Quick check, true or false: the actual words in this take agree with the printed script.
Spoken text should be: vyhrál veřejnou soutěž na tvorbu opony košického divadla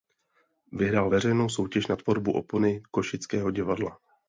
true